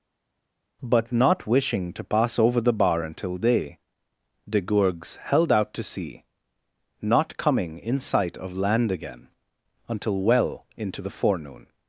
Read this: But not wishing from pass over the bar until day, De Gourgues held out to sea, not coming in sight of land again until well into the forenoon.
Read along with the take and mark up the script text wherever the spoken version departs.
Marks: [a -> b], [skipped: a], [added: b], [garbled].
But not wishing [from -> to] pass over the bar until day, De Gourgues held out to sea, not coming in sight of land again until well into the forenoon.